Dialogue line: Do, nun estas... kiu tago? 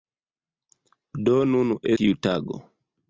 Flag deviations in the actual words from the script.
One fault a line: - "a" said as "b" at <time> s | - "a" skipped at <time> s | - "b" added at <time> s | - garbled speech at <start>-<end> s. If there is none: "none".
- "estas" skipped at 1.8 s